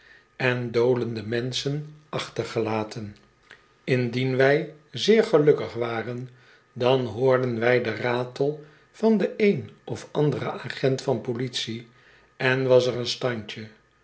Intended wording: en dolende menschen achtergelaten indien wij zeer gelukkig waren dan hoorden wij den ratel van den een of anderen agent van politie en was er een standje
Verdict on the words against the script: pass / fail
pass